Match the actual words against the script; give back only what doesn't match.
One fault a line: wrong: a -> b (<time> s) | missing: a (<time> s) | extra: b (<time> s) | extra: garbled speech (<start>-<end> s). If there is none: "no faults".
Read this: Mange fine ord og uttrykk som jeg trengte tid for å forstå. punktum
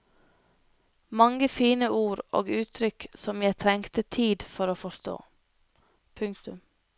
no faults